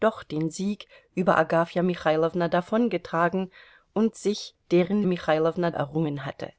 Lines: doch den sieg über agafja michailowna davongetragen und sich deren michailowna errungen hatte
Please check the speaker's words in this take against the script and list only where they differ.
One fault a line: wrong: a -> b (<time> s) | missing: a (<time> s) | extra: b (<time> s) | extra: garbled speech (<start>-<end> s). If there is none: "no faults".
no faults